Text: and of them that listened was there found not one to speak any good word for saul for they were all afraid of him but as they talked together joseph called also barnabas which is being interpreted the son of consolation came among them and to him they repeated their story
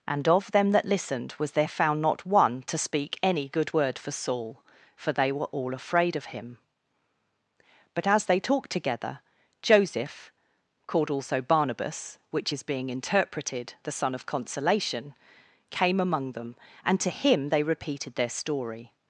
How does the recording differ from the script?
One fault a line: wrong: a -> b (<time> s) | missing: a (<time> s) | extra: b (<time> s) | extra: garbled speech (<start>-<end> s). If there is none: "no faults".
no faults